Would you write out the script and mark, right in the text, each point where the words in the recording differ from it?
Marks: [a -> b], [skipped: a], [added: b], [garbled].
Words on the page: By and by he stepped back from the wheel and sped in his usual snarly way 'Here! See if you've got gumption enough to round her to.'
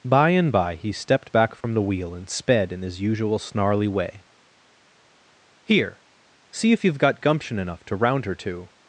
By and by he stepped back from the wheel and sped in his usual snarly way 'Here! See if you've got gumption enough to round her to.'